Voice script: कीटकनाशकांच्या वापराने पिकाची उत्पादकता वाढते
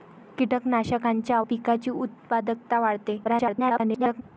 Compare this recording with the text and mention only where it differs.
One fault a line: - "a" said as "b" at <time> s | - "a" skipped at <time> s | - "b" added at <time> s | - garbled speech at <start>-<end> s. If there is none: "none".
- "वापराने" skipped at 1.4 s
- garbled speech at 3.2-4.2 s